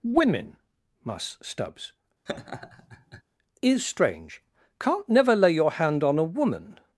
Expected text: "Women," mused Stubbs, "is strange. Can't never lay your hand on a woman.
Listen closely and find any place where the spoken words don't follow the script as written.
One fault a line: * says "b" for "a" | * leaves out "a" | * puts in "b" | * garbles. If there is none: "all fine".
* says "mus" for "mused"